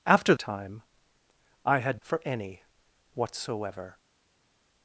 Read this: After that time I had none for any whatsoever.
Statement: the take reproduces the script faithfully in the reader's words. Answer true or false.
false